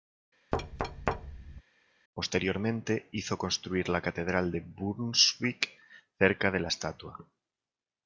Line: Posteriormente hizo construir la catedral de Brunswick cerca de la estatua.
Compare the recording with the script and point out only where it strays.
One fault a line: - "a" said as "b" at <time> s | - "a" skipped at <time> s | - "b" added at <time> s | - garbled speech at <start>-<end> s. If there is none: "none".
none